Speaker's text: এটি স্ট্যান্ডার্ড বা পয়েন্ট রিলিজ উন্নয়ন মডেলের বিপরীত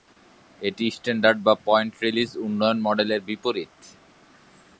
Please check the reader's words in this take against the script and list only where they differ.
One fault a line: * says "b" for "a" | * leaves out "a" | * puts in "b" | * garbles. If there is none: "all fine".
all fine